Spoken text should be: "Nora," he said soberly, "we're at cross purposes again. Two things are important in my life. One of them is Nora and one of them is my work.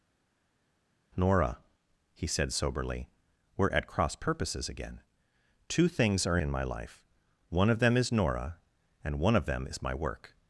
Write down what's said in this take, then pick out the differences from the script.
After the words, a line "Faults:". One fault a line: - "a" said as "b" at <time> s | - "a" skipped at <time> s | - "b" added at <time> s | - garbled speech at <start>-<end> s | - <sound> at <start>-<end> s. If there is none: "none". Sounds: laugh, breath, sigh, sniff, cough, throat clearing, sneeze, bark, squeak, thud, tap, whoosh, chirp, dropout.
"Nora," he said soberly, "we're at cross purposes again. Two things are in my life. One of them is Nora and one of them is my work.
Faults:
- "important" skipped at 6.4 s